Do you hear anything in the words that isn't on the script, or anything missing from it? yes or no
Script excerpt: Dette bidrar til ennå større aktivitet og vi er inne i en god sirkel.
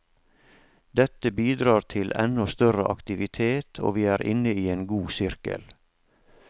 no